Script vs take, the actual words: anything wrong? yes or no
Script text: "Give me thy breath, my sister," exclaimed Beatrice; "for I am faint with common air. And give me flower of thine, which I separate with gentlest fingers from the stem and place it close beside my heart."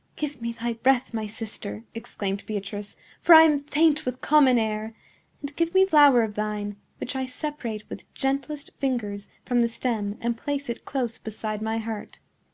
no